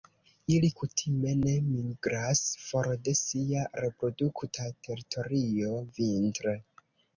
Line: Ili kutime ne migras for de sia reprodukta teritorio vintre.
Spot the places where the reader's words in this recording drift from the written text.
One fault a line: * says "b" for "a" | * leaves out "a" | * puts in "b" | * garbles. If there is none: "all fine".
all fine